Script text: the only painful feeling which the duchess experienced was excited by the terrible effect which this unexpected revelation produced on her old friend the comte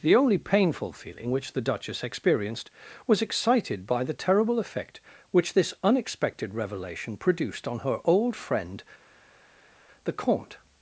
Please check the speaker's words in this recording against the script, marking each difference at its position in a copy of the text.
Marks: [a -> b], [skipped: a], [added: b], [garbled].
the only painful feeling which the duchess experienced was excited by the terrible effect which this unexpected revelation produced on her old friend the comte